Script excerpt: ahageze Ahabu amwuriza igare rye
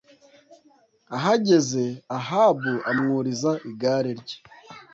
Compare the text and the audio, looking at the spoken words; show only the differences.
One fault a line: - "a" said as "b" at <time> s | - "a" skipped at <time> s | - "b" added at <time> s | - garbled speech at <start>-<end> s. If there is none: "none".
none